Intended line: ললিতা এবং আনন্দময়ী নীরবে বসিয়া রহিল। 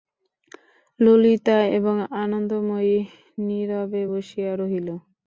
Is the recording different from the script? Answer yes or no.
no